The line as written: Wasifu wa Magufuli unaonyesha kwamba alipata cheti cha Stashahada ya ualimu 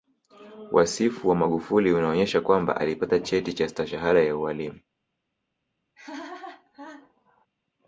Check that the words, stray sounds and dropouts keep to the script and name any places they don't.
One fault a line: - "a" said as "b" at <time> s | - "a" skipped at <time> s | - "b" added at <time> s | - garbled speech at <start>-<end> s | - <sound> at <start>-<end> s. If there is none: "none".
- laugh at 6.0-7.5 s